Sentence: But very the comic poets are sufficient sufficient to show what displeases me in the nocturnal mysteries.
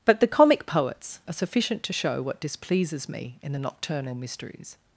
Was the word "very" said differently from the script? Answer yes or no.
yes